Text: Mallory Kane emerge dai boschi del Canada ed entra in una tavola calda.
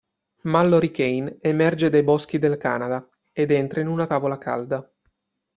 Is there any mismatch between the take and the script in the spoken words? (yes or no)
no